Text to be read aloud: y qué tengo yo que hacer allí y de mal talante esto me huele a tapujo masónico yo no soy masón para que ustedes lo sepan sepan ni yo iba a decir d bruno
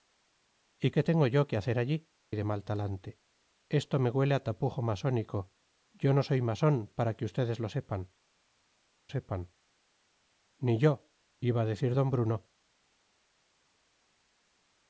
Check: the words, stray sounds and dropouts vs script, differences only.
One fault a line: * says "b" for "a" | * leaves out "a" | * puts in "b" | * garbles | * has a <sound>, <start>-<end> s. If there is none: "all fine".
all fine